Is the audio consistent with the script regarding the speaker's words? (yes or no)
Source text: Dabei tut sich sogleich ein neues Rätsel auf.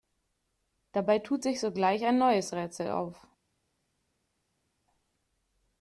yes